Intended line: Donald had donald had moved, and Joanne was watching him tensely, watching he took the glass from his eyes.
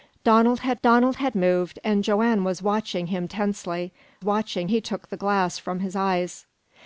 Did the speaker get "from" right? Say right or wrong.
right